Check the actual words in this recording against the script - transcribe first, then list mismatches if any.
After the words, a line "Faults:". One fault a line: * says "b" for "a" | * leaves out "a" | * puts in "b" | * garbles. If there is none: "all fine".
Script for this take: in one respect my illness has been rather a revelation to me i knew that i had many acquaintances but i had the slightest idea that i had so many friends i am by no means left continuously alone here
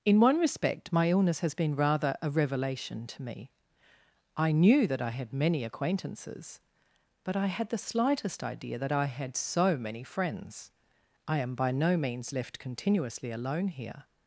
in one respect my illness has been rather a revelation to me i knew that i had many acquaintances but i had the slightest idea that i had so many friends i am by no means left continuously alone here
Faults:
all fine